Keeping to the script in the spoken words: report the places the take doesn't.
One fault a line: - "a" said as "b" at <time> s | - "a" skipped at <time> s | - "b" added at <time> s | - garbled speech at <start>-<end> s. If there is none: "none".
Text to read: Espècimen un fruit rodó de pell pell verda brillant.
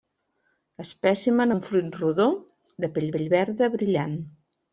none